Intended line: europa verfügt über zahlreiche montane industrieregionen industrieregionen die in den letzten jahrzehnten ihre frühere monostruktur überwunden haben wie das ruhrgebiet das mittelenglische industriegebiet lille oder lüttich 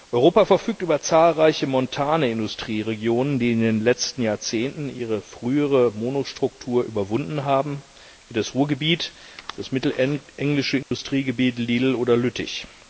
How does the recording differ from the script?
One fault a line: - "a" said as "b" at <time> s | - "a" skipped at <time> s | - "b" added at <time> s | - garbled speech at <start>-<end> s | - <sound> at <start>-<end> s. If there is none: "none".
- "industrieregionen" skipped at 3.4 s
- dropout at 10.8-10.9 s